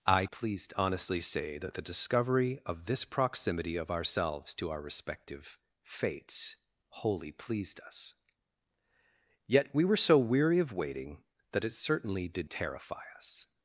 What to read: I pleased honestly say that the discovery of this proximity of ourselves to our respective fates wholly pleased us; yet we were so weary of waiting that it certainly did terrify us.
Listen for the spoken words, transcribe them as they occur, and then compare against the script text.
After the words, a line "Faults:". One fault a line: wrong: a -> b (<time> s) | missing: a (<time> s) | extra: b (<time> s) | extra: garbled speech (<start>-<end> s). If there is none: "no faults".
I pleased honestly say that the discovery of this proximity of ourselves to our respective fates wholly pleased us; yet we were so weary of waiting that it certainly did terrify us.
Faults:
no faults